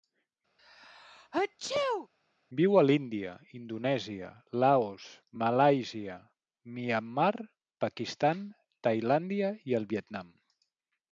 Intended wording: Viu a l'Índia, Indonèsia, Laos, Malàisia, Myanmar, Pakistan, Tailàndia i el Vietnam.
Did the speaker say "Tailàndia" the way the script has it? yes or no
yes